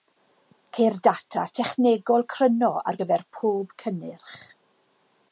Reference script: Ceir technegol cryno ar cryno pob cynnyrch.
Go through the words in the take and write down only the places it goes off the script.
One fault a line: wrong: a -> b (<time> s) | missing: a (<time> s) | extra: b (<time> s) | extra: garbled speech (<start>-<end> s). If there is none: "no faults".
extra: data (1.1 s)
wrong: cryno -> gyfer (3.0 s)